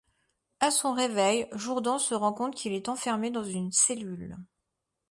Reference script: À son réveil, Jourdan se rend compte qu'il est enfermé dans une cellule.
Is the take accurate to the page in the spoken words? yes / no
yes